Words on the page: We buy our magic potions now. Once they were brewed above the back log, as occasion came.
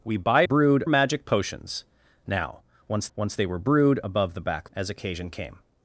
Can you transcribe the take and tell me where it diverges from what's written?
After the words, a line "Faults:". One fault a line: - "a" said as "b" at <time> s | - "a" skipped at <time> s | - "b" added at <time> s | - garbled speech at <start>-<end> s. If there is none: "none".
We buy brewed magic potions now. Once once they were brewed above the back as occasion came.
Faults:
- "our" said as "brewed" at 0.4 s
- "once" added at 3.1 s
- "log" skipped at 4.7 s